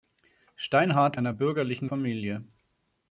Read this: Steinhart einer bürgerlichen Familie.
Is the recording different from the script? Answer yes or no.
no